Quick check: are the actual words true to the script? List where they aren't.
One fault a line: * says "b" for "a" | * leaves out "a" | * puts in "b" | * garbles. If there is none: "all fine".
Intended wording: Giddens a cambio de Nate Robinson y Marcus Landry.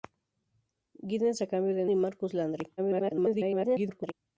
* leaves out "Nate Robinson"
* garbles